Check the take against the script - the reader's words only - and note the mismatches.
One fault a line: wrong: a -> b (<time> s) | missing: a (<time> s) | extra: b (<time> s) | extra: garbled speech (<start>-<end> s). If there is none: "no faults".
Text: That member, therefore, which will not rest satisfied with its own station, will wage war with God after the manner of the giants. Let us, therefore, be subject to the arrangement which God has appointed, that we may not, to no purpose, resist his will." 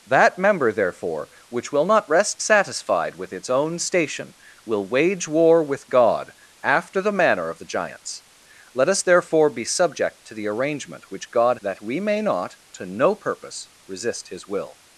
missing: has appointed (11.6 s)